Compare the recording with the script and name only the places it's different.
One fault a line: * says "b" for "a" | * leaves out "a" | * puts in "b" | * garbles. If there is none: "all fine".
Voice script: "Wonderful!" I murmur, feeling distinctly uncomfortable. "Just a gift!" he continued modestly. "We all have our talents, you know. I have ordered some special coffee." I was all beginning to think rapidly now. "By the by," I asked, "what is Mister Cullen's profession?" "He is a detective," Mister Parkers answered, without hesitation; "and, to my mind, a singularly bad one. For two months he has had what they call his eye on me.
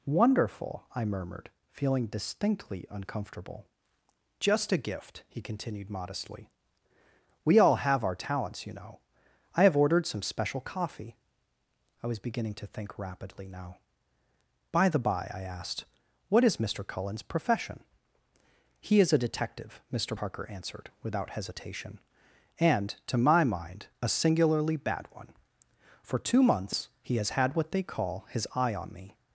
* says "murmured" for "murmur"
* leaves out "all"
* says "Parker" for "Parkers"